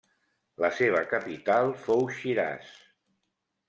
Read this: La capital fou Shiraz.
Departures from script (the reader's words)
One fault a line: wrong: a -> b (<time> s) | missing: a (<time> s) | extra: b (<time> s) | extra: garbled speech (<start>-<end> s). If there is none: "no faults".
extra: seva (0.8 s)